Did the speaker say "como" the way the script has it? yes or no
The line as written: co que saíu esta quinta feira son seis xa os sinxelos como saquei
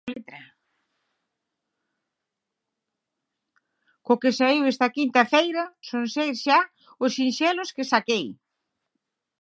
no